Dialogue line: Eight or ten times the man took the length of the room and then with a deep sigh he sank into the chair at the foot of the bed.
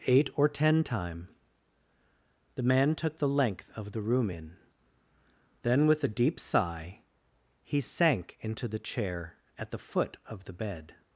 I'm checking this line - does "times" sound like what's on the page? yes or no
no